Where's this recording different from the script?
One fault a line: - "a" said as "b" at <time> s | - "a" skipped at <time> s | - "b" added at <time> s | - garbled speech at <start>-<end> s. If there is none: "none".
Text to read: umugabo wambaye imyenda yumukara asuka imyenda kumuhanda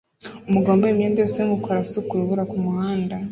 - "yose" added at 1.2 s
- "imyenda" said as "urubura" at 2.1 s